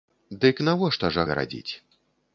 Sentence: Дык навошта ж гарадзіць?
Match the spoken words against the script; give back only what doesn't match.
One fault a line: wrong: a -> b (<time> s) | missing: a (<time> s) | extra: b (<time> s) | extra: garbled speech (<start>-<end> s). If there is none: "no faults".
no faults